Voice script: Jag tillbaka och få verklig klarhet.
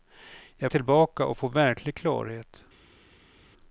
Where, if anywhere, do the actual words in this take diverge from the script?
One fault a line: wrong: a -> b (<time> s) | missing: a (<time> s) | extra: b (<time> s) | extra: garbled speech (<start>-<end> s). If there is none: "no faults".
no faults